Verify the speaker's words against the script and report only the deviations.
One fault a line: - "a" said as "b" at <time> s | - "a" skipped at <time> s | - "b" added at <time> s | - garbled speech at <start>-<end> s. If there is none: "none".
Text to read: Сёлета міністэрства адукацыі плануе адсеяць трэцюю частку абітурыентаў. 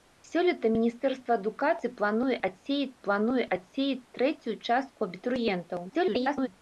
- "плануе адсеяць" added at 3.1 s
- garbled speech at 5.9-6.5 s